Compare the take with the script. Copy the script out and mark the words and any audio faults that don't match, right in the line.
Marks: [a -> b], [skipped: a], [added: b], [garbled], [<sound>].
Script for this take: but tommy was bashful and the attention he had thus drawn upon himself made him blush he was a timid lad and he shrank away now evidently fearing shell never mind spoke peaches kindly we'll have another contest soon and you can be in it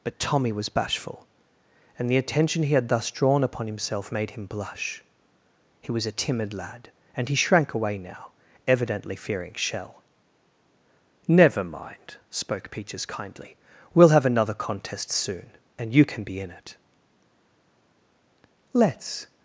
but tommy was bashful and the attention he had thus drawn upon himself made him blush he was a timid lad and he shrank away now evidently fearing shell never mind spoke peaches kindly we'll have another contest soon and you can be in it [added: let's]